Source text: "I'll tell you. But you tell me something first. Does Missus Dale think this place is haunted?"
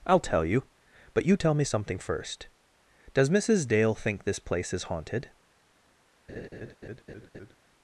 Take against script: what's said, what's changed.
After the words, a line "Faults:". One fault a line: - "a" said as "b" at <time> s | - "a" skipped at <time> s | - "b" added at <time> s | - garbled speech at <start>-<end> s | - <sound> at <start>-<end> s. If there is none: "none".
"I'll tell you. But you tell me something first. Does Missus Dale think this place is haunted?"
Faults:
- laugh at 6.3-7.6 s